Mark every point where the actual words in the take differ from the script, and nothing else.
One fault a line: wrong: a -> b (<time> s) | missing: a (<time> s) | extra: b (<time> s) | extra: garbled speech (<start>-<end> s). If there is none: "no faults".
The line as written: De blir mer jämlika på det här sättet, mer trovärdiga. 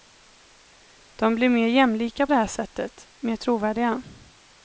missing: på (2.3 s)